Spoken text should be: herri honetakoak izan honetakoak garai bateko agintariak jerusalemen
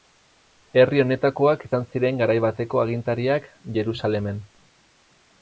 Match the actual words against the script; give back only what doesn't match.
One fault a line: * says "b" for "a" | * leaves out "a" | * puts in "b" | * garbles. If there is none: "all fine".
* says "ziren" for "honetakoak"